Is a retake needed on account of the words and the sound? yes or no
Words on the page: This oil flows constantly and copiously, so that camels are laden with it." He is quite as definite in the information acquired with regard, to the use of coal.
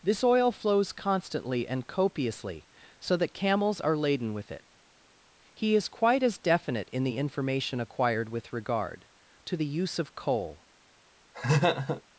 yes